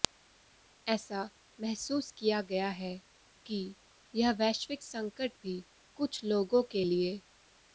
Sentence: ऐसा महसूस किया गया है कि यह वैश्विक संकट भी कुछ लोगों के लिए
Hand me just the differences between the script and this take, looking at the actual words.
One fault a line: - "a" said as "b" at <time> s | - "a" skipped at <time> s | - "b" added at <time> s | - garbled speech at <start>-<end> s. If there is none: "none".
none